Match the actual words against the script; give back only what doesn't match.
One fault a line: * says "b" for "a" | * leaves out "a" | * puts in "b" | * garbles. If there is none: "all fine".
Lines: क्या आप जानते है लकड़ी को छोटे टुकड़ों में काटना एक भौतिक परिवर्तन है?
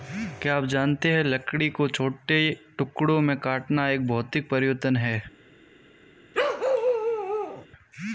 all fine